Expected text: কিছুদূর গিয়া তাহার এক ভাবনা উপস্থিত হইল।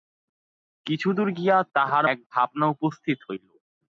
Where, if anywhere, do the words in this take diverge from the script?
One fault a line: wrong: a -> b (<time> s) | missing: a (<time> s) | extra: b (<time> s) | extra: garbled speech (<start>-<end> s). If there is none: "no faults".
no faults